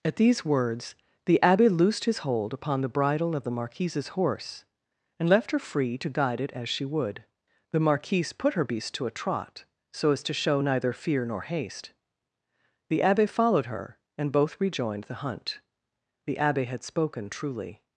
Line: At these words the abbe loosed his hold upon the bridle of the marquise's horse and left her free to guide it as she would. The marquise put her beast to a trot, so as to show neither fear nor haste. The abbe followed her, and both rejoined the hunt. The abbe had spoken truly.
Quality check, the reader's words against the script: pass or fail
pass